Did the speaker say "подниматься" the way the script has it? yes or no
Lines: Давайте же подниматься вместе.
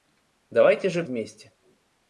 no